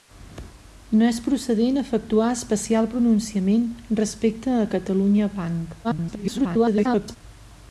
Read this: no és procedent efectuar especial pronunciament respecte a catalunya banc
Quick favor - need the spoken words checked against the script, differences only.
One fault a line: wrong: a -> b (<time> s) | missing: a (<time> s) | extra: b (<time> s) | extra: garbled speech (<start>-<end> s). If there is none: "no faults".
extra: garbled speech (5.8-7.2 s)